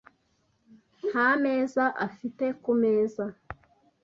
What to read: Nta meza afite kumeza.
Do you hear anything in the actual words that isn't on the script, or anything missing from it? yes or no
no